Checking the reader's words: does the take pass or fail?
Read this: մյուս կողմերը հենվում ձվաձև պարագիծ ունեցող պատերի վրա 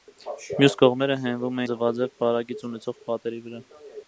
pass